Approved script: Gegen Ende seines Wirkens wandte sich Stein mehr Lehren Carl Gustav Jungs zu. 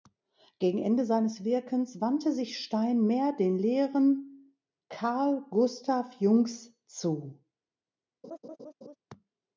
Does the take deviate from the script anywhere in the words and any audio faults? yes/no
yes